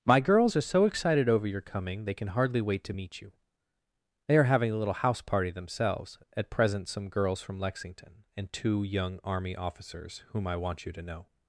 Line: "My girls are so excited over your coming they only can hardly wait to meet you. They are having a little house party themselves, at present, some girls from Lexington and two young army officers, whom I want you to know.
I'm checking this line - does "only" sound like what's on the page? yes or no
no